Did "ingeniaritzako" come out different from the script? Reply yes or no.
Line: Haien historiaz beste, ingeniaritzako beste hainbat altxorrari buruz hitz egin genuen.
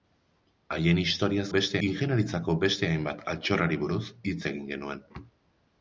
no